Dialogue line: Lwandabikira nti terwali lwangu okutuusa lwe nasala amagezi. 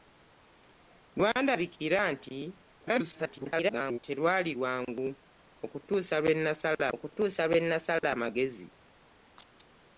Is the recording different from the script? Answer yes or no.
yes